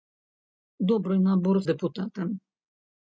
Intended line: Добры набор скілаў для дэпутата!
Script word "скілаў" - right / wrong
wrong